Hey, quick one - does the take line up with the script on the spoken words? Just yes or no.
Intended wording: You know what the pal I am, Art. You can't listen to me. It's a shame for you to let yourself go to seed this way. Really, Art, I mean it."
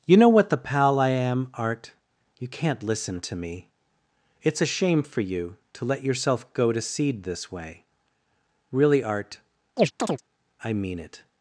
yes